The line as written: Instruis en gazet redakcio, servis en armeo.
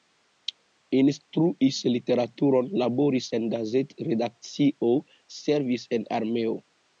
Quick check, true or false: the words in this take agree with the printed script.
false